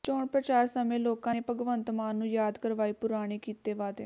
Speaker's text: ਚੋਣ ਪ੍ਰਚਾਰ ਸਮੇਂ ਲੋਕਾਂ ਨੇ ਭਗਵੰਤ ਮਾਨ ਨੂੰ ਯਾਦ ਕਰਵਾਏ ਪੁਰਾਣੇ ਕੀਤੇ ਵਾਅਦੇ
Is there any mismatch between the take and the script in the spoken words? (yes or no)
no